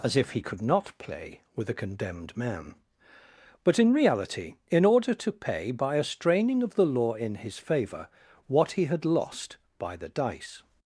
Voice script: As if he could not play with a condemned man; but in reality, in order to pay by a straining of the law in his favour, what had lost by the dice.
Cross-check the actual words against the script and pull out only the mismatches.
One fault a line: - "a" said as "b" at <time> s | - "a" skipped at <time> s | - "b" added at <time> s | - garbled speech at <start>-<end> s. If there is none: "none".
- "he" added at 8.7 s